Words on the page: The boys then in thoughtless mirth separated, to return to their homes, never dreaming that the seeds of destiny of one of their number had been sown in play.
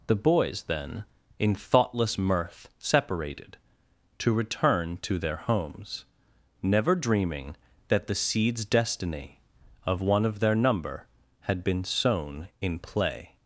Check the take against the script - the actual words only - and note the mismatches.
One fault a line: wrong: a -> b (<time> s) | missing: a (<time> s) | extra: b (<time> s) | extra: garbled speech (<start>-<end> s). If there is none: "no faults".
missing: of (8.6 s)